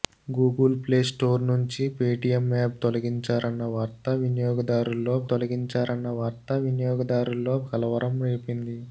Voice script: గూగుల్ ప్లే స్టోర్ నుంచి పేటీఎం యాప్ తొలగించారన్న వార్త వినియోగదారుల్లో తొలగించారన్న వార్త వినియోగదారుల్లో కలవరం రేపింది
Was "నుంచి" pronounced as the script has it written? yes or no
yes